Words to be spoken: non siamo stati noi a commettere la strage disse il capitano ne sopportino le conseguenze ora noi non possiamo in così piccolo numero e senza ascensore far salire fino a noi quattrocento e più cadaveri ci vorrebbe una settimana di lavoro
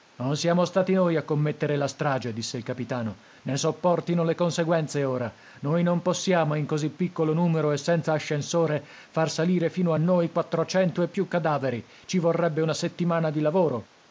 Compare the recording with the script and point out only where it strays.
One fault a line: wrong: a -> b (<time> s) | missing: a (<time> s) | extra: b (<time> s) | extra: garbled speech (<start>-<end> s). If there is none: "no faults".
no faults